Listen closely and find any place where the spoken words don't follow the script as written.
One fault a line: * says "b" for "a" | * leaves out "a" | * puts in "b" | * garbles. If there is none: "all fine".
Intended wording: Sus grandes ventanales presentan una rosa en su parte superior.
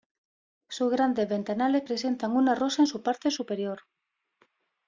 all fine